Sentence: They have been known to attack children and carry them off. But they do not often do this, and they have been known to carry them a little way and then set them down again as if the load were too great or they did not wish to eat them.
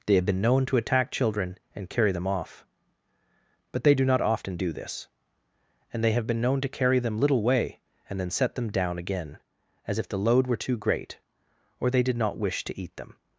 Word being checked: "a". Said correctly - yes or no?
no